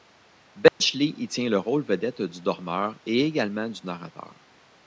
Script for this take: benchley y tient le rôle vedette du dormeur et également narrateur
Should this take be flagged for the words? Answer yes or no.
yes